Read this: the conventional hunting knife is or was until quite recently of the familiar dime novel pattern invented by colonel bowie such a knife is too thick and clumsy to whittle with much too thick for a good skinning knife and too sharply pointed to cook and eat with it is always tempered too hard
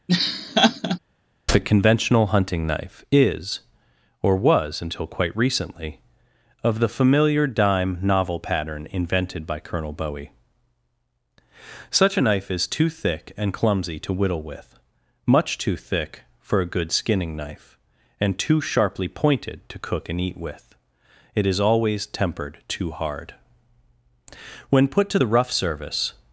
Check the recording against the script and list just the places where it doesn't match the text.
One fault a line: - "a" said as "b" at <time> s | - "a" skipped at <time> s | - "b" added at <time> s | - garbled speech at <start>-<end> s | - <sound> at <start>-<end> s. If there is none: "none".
- laugh at 0.1-1.0 s
- "when put to the rough service" added at 24.7 s